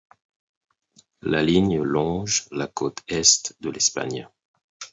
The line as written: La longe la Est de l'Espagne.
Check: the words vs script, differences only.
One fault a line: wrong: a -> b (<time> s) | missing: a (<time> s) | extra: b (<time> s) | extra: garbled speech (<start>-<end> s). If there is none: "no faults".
extra: ligne (1.4 s)
extra: côte (2.7 s)